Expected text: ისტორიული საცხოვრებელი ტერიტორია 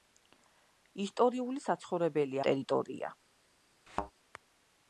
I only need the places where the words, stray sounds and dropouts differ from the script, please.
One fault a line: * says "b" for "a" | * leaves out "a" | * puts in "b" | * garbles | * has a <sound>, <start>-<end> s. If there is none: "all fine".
* has a thud, 3.9-4.1 s